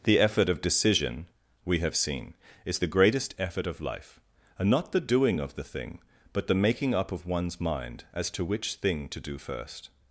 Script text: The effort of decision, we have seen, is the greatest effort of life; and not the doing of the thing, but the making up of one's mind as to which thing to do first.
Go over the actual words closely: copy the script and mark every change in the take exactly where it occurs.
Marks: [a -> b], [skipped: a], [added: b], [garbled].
The effort of decision, we have seen, is the greatest effort of life; and not the doing of the thing, but the making up of one's mind as to which thing to do first.